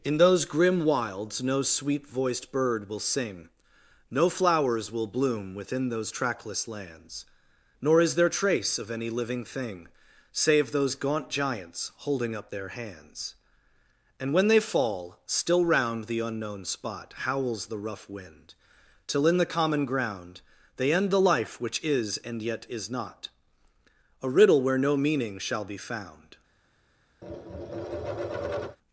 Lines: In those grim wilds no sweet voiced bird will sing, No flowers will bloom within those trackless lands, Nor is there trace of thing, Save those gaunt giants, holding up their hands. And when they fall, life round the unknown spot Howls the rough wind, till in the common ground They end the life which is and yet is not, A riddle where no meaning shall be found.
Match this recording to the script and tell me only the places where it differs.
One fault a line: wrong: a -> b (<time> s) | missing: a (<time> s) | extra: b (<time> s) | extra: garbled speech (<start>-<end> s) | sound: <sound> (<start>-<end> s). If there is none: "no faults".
extra: any living (8.9 s)
wrong: life -> still (15.3 s)
sound: tap (27.2-28.8 s)